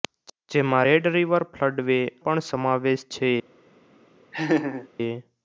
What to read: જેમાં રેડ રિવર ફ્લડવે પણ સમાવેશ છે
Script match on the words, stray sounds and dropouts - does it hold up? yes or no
no